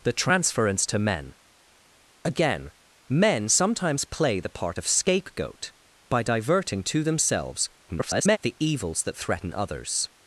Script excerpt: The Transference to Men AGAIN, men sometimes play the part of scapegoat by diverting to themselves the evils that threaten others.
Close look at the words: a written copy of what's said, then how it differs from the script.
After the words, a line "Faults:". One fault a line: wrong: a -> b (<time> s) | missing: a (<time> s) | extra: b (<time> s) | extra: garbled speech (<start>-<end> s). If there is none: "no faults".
The Transference to Men AGAIN, men sometimes play the part of scapegoat by diverting to themselves [garbled] the evils that threaten others.
Faults:
extra: garbled speech (7.9-8.4 s)